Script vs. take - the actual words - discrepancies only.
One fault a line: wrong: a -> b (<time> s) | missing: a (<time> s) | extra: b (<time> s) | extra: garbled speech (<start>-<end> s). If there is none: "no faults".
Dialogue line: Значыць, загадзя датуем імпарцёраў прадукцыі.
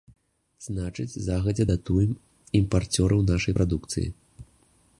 extra: нашай (3.3 s)